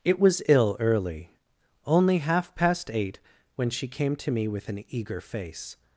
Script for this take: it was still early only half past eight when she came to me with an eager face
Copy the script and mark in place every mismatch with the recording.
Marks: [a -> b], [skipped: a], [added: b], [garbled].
it was [still -> ill] early only half past eight when she came to me with an eager face